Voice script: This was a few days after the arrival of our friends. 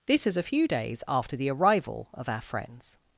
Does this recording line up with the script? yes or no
no